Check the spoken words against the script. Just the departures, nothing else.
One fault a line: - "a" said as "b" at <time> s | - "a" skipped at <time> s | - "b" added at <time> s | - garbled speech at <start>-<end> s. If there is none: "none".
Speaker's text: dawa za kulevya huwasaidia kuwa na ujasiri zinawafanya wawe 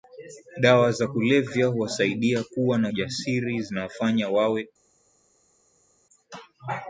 none